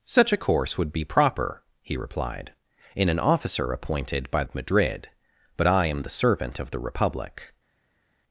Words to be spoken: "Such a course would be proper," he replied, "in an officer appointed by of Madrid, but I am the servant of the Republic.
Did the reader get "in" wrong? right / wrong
right